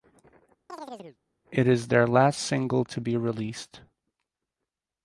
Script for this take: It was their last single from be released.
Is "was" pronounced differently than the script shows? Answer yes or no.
yes